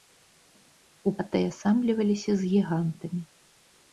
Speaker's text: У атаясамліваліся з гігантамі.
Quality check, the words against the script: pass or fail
pass